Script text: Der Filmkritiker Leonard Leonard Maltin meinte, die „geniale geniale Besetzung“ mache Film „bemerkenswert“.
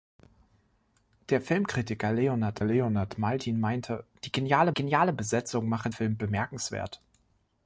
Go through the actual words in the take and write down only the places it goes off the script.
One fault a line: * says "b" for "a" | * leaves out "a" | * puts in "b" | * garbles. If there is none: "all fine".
all fine